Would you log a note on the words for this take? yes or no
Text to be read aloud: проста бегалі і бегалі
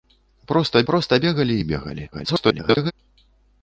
yes